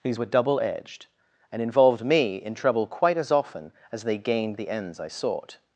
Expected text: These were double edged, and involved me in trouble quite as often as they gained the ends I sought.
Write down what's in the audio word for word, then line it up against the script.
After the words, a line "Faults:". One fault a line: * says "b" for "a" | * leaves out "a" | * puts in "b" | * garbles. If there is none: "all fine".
These were double edged, and involved me in trouble quite as often as they gained the ends I sought.
Faults:
all fine